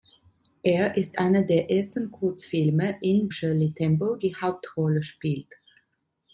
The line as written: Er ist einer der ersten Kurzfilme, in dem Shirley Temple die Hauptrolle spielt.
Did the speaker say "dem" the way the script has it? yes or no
no